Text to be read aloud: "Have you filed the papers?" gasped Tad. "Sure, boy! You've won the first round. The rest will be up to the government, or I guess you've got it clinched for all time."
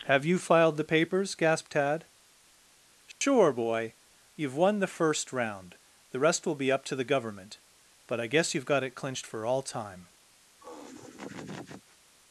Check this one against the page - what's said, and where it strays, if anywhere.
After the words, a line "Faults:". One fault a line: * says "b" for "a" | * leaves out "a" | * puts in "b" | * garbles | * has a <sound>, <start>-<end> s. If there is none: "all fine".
"Have you filed the papers?" gasped Tad. "Sure, boy! You've won the first round. The rest will be up to the government, but I guess you've got it clinched for all time."
Faults:
* has a dropout, 3.1-3.2 s
* says "but" for "or"
* has a laugh, 10.6-12.0 s